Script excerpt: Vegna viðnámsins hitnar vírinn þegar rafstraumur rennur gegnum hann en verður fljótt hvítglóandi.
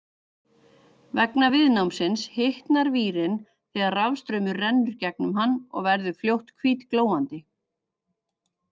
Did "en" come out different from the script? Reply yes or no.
yes